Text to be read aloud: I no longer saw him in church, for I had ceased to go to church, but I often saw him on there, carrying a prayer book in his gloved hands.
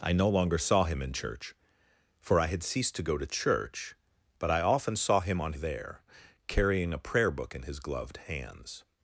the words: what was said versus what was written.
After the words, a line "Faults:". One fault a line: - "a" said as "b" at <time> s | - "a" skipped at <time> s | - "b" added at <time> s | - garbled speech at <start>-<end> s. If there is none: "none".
I no longer saw him in church, for I had ceased to go to church, but I often saw him on there, carrying a prayer book in his gloved hands.
Faults:
none